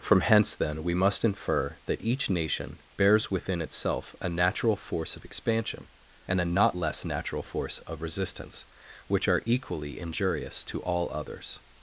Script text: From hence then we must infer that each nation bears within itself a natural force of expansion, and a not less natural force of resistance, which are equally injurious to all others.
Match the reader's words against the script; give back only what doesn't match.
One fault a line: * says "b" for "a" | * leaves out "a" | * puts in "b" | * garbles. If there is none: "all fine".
all fine